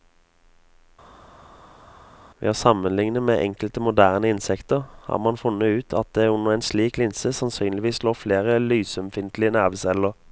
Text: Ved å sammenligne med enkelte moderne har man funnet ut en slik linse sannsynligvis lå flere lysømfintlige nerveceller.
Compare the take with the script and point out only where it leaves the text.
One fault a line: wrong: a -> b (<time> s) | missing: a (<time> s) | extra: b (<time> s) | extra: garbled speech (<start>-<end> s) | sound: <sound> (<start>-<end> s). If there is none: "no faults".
extra: insekter (4.3 s)
extra: at det under (6.0 s)